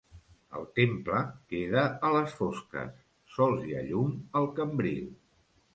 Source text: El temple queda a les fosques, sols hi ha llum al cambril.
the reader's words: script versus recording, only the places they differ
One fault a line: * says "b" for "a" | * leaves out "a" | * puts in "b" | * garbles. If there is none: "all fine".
all fine